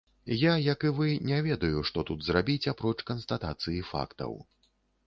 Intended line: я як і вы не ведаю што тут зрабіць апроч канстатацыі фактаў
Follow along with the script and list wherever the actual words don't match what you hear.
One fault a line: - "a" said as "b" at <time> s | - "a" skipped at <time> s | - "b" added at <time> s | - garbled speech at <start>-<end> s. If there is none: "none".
none